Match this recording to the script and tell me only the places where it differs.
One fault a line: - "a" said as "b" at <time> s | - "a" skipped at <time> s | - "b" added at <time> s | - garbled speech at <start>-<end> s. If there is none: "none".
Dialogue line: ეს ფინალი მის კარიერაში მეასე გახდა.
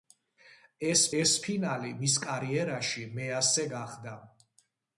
- "ეს" added at 1.2 s